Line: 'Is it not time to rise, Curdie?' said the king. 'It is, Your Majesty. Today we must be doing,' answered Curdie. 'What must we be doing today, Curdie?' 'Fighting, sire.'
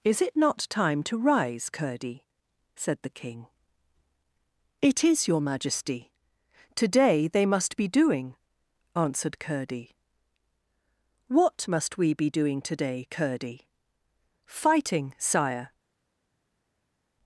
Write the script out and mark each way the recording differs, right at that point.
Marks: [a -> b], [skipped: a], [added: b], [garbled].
'Is it not time to rise, Curdie?' said the king. 'It is, Your Majesty. Today [we -> they] must be doing,' answered Curdie. 'What must we be doing today, Curdie?' 'Fighting, sire.'